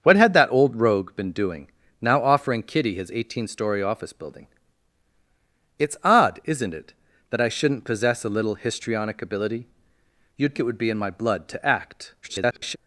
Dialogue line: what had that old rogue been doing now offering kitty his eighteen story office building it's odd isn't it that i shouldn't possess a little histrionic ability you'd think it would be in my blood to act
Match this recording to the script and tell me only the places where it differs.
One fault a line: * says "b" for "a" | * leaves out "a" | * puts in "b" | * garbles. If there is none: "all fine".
* leaves out "think"
* garbles